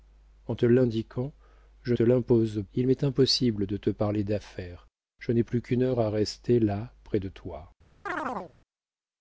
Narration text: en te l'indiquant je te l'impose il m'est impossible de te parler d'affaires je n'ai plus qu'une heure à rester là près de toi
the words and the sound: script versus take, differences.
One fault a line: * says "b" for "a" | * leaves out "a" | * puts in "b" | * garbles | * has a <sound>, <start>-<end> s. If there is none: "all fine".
* has a chirp, 8.1-8.5 s